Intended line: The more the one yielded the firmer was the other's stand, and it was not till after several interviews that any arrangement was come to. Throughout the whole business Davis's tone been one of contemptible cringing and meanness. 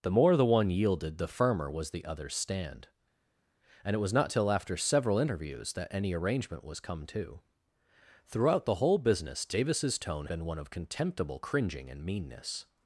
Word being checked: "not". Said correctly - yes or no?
yes